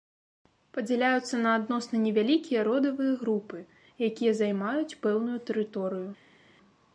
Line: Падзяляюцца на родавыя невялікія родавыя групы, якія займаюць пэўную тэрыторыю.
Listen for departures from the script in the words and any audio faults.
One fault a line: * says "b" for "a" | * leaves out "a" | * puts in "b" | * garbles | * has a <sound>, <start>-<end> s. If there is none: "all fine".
* says "адносна" for "родавыя"